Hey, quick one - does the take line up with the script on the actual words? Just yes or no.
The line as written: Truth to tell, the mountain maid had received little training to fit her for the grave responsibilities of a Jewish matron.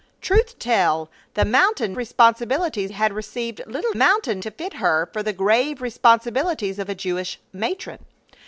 no